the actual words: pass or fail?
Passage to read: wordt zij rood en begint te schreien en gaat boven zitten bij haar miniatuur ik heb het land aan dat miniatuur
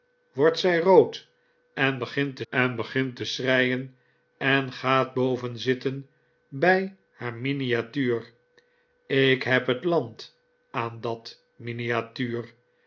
fail